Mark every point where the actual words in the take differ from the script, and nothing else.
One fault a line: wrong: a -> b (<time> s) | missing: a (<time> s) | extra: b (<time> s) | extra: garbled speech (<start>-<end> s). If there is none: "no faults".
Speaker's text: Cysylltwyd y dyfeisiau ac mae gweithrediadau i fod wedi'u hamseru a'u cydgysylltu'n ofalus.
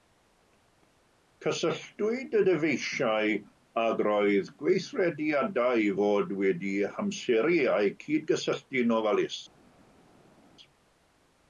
wrong: mae -> roedd (4.1 s)